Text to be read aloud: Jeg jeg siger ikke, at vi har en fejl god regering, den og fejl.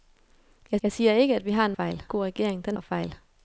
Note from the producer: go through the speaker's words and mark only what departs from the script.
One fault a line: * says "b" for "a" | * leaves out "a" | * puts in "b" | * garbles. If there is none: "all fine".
all fine